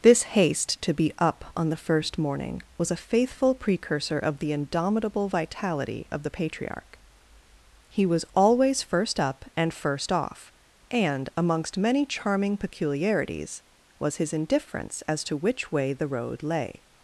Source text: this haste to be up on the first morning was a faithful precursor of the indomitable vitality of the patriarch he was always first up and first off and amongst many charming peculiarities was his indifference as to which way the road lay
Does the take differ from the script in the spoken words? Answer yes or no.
no